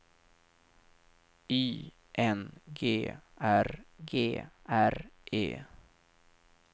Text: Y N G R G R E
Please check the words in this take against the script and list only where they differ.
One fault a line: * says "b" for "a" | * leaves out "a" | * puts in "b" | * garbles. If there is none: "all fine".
all fine